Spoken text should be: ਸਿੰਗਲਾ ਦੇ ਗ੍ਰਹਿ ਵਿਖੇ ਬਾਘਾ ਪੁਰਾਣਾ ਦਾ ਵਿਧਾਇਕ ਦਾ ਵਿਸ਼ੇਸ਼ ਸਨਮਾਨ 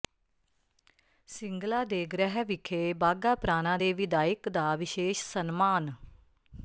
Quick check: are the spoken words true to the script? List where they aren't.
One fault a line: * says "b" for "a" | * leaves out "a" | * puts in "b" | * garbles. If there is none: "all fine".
* says "ਦੇ" for "ਦਾ"